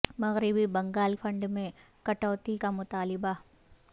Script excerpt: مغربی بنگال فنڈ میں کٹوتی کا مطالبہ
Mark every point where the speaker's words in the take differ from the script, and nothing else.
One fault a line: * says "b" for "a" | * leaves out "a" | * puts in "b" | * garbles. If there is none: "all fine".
all fine